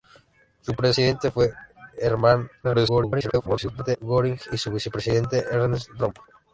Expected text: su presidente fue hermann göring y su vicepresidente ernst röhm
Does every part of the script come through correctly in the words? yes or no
no